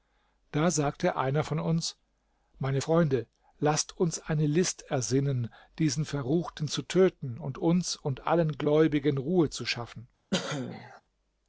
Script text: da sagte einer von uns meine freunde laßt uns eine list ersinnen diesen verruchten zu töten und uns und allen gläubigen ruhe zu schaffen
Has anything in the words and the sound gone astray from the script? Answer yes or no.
yes